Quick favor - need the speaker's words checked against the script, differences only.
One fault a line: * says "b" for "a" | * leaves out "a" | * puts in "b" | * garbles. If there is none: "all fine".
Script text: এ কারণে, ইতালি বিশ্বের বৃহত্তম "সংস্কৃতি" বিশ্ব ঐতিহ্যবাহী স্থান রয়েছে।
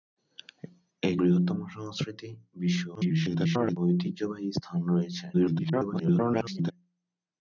* leaves out "কারণে ইতালি বিশ্বের"
* garbles
* garbles